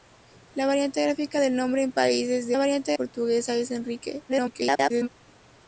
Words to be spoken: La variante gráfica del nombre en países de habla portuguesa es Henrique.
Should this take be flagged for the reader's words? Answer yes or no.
yes